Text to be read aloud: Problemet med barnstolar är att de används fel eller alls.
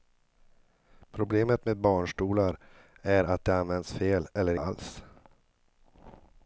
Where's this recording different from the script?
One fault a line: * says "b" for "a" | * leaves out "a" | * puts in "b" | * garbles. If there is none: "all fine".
all fine